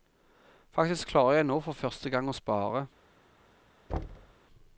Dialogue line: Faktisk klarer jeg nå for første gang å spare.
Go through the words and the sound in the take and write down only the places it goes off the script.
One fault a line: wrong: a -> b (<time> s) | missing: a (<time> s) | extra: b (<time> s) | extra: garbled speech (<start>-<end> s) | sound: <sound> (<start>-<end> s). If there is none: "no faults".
sound: thud (3.9-4.3 s)